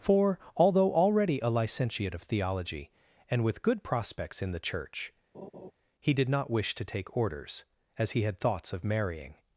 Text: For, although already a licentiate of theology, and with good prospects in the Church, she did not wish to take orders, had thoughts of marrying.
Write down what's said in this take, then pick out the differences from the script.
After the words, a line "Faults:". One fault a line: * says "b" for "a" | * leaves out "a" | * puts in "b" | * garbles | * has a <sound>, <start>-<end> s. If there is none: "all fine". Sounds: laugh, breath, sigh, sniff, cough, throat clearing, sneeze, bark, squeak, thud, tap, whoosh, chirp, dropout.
For, although already a licentiate of theology, and with good prospects in the Church, he did not wish to take orders, as he had thoughts of marrying.
Faults:
* has a laugh, 5.3-5.7 s
* says "he" for "she"
* puts in "as he"